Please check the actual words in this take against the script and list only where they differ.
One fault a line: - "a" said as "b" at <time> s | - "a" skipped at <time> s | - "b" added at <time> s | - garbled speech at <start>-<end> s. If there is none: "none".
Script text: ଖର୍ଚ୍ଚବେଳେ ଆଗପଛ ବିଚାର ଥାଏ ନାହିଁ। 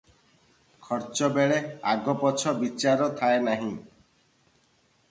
none